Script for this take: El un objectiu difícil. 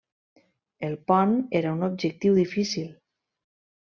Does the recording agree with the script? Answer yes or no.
no